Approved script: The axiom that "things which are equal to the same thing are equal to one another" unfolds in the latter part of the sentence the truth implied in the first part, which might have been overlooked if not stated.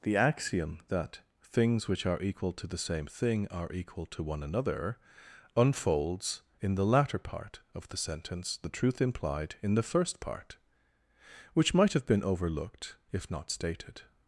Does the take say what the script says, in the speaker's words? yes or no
yes